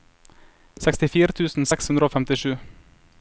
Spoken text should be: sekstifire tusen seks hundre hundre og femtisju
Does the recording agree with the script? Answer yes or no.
no